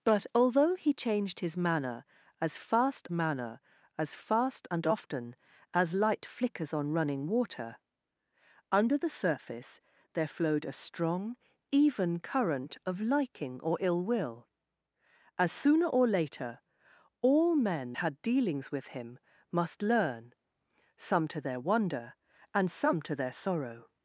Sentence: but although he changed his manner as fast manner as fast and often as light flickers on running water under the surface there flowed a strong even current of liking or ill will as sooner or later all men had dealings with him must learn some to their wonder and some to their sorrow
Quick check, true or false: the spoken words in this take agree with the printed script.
true